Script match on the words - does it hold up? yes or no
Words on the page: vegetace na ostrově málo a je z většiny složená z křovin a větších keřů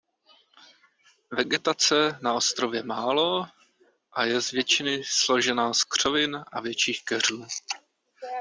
yes